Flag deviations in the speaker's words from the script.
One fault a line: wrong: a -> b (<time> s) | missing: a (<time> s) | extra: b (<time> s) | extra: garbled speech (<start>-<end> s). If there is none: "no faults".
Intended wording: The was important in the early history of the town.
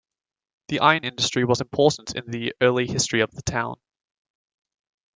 extra: iron industry (0.8 s)